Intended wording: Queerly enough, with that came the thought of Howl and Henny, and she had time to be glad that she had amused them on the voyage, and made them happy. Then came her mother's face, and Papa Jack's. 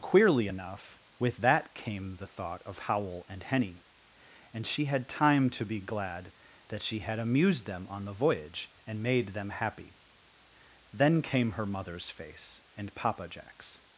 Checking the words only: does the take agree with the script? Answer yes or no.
yes